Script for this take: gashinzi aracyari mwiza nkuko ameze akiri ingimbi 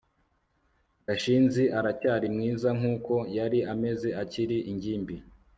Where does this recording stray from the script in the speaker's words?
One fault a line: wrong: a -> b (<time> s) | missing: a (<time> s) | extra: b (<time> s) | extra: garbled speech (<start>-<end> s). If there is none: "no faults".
extra: yari (3.4 s)